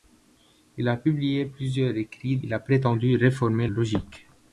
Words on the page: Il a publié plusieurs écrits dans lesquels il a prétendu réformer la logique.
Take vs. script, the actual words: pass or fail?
fail